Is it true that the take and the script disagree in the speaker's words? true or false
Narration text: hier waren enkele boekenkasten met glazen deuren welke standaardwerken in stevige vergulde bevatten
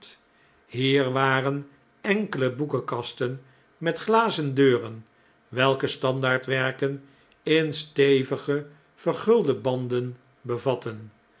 true